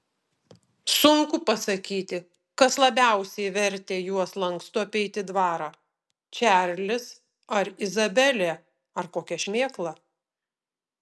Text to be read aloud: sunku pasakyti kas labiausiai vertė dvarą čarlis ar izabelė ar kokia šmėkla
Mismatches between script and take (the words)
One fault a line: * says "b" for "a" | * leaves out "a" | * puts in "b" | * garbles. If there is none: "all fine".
* puts in "juos lankstu apeiti"